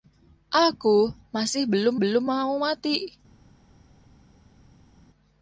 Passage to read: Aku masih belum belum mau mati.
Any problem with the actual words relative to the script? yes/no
no